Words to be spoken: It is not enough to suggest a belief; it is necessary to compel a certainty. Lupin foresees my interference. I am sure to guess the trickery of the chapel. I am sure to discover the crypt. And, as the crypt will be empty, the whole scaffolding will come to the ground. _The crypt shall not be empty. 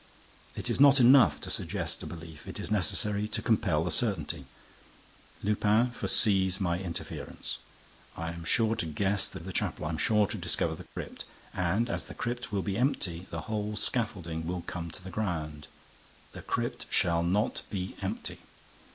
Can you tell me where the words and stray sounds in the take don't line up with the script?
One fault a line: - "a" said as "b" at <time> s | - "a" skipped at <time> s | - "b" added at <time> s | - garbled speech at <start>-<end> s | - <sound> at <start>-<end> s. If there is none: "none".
- "trickery" skipped at 9.4 s
- dropout at 10.9-11.0 s